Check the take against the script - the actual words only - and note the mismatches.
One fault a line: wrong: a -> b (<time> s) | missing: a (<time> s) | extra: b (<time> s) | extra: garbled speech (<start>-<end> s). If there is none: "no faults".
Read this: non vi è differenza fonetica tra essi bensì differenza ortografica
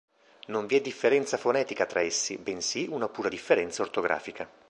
extra: una pura (2.9 s)